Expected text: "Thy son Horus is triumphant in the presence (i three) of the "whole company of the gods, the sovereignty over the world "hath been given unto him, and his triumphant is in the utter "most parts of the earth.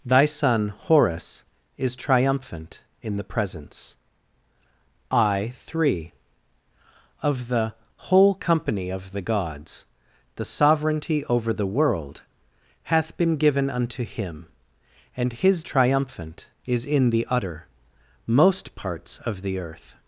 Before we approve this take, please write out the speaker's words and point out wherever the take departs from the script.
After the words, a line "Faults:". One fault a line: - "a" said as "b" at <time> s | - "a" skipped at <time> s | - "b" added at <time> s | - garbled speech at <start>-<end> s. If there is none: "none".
"Thy son Horus is triumphant in the presence (i three) of the "whole company of the gods, the sovereignty over the world "hath been given unto him, and his triumphant is in the utter "most parts of the earth.
Faults:
none